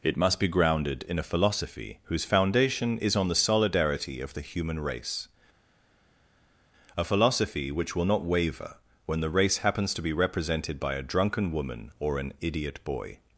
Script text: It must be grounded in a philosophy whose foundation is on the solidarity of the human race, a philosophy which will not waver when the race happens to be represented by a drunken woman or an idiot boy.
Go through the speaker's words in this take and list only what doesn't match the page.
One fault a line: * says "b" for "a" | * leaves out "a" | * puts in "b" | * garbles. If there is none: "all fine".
all fine